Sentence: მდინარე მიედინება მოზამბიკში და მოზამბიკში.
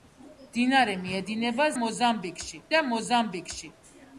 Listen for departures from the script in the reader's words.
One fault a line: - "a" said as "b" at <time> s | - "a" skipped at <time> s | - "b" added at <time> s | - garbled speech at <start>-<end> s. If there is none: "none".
none